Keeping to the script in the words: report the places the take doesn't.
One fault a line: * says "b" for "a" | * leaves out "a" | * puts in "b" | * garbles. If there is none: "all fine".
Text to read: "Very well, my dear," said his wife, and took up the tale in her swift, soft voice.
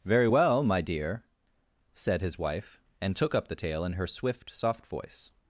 all fine